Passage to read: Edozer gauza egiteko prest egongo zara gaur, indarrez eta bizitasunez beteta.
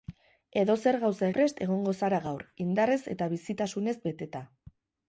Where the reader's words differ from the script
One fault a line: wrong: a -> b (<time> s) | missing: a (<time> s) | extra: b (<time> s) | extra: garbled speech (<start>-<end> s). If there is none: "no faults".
missing: egiteko (1.3 s)